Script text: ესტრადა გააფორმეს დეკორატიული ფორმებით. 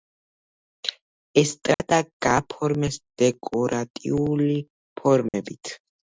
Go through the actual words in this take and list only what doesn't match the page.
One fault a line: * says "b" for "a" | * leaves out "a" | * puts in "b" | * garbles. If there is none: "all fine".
all fine